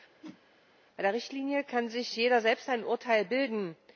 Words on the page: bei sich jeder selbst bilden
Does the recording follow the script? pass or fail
fail